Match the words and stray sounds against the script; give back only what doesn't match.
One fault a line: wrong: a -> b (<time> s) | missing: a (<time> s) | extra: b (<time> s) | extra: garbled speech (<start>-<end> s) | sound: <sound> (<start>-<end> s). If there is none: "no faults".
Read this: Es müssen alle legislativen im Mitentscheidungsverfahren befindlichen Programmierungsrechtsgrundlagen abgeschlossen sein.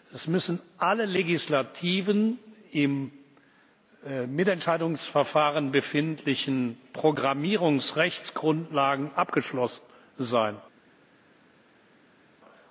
no faults